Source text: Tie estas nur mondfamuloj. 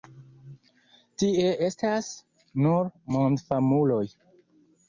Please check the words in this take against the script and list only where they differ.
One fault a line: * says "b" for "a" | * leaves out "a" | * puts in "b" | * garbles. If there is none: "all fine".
all fine